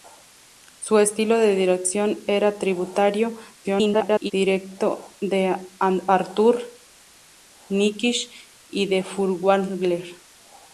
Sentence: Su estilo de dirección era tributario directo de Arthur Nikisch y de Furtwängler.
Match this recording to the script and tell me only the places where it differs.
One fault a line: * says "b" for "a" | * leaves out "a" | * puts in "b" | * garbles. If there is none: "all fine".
* garbles